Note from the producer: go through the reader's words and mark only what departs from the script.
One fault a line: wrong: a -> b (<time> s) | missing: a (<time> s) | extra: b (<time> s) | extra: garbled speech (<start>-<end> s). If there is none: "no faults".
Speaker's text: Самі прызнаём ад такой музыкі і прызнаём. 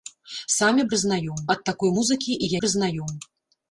no faults